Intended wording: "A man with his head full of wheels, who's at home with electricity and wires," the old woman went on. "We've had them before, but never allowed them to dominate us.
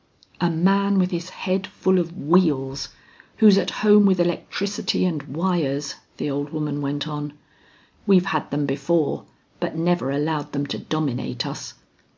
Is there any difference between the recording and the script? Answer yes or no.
no